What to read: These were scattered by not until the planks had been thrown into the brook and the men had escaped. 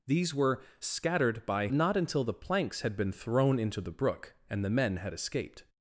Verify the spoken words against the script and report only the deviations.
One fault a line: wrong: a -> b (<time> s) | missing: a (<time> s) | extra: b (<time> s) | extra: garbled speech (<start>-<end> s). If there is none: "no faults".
no faults